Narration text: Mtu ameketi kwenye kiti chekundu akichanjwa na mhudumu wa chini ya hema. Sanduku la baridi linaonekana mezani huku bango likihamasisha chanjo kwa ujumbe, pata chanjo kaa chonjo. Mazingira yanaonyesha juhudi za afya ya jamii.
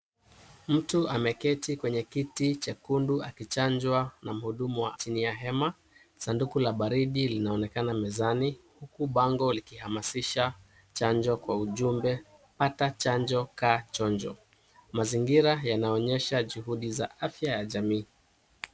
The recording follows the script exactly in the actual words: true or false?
true